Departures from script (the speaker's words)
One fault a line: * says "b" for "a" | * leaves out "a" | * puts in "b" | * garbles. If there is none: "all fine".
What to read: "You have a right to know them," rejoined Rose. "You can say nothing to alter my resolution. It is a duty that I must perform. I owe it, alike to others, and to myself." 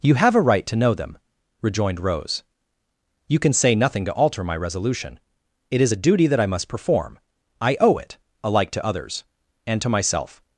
all fine